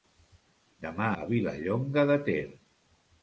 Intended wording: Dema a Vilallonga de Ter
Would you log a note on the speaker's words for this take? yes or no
no